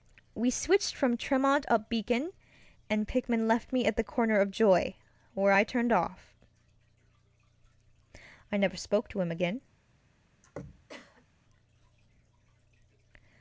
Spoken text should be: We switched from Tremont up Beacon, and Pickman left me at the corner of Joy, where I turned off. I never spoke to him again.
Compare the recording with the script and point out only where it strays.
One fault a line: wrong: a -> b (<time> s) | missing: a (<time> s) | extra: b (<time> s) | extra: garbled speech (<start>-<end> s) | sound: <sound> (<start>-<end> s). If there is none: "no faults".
sound: throat clearing (10.4-11.2 s)